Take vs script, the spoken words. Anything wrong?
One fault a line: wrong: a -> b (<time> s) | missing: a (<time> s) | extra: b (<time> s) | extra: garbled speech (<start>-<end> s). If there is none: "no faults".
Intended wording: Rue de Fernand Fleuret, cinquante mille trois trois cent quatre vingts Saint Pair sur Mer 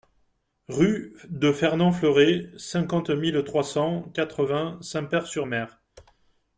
missing: trois (3.6 s)